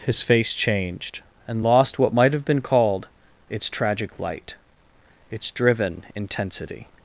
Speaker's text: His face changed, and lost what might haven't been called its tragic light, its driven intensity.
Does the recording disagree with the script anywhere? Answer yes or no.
yes